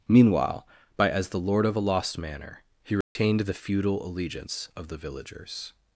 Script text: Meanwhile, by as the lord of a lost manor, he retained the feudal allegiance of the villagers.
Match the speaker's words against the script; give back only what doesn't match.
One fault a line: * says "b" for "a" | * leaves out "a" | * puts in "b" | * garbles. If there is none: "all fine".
all fine